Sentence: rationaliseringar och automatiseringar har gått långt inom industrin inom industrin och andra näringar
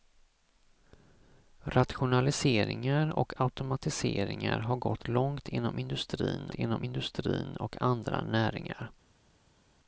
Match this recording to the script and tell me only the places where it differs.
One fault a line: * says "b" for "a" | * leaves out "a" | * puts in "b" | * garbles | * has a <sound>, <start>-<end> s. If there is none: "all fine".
all fine